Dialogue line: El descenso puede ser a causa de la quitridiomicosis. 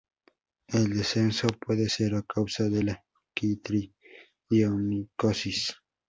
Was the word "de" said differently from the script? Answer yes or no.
no